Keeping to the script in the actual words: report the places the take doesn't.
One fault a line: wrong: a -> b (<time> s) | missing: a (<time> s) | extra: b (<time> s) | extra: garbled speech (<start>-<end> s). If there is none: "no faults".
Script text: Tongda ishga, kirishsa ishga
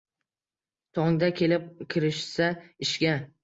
wrong: ishga -> kelib (1.4 s)